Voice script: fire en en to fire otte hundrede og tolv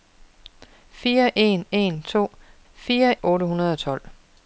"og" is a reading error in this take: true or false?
false